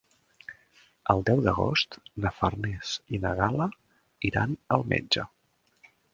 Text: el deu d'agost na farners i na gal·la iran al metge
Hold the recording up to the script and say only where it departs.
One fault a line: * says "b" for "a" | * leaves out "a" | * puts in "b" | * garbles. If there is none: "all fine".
all fine